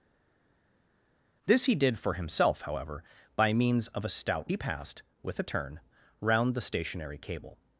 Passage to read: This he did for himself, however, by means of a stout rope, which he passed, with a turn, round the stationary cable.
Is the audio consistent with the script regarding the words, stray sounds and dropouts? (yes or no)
no